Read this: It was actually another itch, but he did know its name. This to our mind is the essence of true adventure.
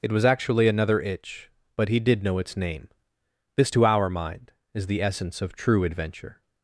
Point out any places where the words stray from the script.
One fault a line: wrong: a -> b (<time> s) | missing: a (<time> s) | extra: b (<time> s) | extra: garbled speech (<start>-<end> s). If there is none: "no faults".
no faults